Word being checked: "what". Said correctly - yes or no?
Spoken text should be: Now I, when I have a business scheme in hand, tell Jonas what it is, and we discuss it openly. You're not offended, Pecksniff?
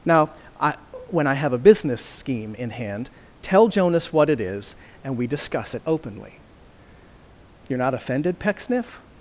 yes